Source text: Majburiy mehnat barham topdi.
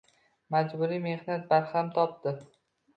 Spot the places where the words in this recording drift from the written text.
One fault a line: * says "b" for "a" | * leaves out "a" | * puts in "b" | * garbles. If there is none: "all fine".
all fine